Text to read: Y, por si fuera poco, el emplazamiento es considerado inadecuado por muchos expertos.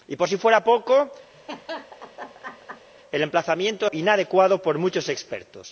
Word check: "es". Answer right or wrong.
wrong